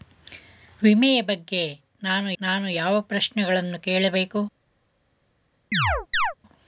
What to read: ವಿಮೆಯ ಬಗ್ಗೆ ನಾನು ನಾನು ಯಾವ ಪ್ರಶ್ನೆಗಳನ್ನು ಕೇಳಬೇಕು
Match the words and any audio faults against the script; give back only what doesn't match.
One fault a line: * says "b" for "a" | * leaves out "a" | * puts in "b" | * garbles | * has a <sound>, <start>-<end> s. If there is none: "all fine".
* has a chirp, 5.7-6.3 s